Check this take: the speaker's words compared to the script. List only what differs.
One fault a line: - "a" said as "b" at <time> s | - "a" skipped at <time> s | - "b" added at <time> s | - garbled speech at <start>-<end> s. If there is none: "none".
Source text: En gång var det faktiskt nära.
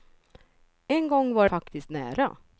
- "det" skipped at 1.5 s